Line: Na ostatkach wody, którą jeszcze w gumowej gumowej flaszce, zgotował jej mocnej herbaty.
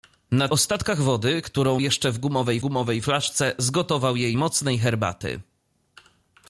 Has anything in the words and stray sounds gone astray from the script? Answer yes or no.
no